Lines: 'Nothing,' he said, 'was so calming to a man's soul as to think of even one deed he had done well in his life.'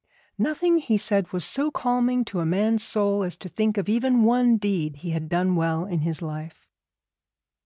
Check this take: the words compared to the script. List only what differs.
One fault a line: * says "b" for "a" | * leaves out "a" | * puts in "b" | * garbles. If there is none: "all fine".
all fine